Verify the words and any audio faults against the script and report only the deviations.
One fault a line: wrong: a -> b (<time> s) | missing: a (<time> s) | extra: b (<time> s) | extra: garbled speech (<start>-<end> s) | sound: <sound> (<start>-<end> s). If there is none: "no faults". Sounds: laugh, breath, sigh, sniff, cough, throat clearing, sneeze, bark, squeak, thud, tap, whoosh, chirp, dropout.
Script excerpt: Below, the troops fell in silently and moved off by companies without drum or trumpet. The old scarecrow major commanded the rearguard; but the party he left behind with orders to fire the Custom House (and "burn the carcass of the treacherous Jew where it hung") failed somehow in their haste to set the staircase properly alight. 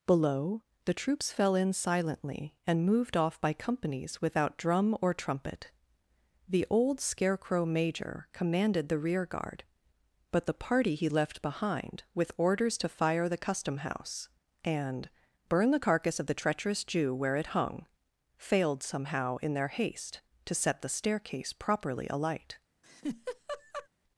sound: laugh (22.8-23.9 s)